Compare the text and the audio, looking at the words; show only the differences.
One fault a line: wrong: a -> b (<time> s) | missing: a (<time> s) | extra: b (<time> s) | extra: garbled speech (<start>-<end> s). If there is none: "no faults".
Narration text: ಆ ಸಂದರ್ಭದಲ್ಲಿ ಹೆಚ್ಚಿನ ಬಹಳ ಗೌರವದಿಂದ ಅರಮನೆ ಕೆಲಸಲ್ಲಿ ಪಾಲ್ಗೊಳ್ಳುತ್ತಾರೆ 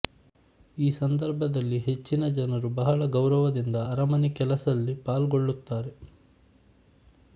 wrong: ಆ -> ಈ (0.8 s)
extra: ಜನರು (2.4 s)